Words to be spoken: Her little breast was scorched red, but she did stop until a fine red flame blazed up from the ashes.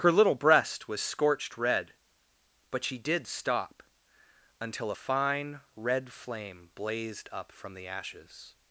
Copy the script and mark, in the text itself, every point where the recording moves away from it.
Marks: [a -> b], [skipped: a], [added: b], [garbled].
Her little breast was scorched red, but she did stop until a fine red flame blazed up from the ashes.